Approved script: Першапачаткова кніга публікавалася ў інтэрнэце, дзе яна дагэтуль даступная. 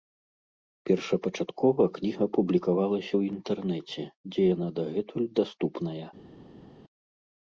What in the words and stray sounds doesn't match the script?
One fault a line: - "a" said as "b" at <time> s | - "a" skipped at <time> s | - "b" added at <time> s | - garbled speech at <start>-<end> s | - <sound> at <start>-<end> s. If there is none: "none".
none